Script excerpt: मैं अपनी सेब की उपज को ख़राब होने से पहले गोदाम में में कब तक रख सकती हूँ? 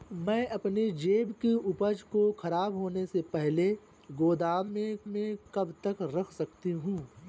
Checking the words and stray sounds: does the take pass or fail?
pass